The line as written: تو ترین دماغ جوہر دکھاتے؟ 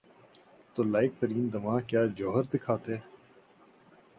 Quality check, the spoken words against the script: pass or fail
fail